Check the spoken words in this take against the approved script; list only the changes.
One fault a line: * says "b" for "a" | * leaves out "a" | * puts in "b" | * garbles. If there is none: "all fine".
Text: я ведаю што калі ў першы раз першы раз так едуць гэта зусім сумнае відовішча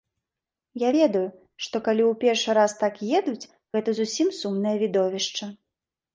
* leaves out "першы раз"